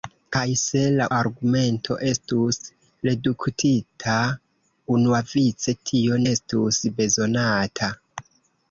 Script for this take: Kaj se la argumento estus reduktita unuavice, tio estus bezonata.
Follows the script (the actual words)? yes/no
yes